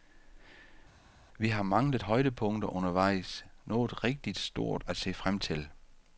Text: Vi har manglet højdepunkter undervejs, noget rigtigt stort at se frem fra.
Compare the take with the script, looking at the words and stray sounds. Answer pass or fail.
fail